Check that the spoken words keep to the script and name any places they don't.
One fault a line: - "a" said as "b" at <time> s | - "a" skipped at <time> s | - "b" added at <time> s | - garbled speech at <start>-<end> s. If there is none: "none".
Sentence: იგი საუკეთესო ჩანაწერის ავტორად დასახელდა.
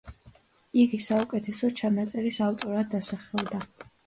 none